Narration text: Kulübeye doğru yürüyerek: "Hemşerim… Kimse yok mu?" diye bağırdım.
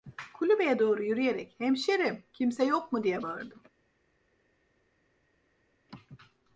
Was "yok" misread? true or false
false